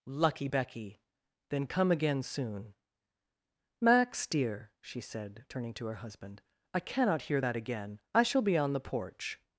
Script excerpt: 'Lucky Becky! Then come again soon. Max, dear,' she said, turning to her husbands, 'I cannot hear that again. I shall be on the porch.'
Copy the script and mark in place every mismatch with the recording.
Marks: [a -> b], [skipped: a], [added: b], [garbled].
'Lucky Becky! Then come again soon. Max, dear,' she said, turning to her [husbands, -> husband] 'I cannot hear that again. I shall be on the porch.'